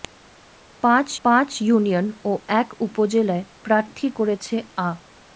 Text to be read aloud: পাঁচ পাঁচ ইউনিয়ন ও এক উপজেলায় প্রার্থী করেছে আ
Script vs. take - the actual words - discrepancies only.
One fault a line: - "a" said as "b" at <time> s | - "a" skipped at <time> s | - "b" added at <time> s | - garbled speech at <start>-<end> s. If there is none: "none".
none